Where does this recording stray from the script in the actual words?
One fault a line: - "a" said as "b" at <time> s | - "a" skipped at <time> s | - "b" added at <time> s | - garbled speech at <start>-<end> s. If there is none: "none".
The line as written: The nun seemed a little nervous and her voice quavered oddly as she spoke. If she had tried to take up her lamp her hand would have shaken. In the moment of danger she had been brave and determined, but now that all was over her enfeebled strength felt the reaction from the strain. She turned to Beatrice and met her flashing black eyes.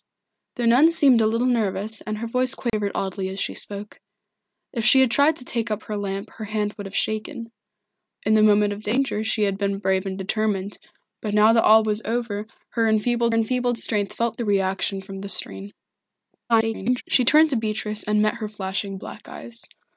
- "enfeebled" added at 13.3 s
- garbled speech at 16.5-17.0 s